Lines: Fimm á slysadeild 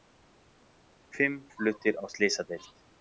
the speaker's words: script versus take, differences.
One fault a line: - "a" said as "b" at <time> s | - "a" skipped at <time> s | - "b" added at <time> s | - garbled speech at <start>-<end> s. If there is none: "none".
- "fluttir" added at 1.6 s